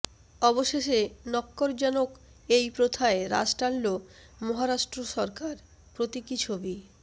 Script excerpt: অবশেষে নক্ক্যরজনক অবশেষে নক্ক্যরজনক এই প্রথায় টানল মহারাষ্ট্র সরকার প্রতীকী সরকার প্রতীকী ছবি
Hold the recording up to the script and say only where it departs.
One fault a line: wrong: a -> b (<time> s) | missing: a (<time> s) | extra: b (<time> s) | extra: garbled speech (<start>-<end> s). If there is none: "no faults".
missing: অবশেষে নক্ক্যরজনক (2.1 s)
extra: রাশ (3.3 s)
missing: সরকার প্রতীকী (6.3 s)